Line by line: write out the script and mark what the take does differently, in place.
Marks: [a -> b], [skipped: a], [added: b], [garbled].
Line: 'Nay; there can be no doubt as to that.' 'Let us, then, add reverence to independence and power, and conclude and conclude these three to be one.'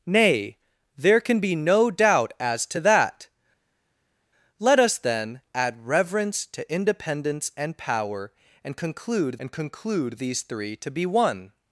'Nay; there can be no doubt as to that.' 'Let us, then, add reverence to independence and power, and conclude and conclude these three to be one.'